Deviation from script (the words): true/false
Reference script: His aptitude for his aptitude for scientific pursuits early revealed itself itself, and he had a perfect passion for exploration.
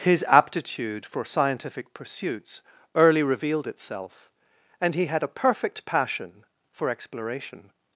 true